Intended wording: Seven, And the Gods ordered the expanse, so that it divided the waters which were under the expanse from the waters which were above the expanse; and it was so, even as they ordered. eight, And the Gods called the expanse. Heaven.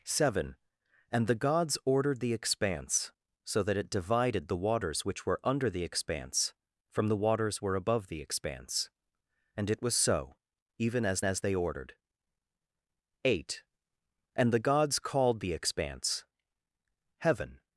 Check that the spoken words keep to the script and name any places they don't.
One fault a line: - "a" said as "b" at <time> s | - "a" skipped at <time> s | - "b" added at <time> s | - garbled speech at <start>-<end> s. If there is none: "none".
- "which" skipped at 7.6 s
- "as" added at 11.2 s